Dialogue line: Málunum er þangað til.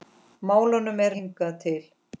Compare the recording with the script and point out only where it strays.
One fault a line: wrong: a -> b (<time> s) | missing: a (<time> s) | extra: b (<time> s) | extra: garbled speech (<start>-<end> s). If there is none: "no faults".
no faults